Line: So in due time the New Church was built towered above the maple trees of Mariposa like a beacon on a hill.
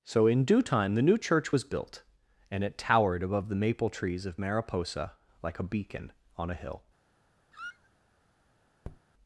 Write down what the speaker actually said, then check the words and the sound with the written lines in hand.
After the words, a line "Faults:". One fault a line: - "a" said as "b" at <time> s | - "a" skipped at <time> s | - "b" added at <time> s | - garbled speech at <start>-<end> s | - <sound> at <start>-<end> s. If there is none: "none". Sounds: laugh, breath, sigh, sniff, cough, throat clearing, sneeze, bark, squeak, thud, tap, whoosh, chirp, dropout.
So in due time the New Church was built and it towered above the maple trees of Mariposa like a beacon on a hill.
Faults:
- "and it" added at 2.5 s
- squeak at 7.5-7.9 s
- tap at 8.8-9.0 s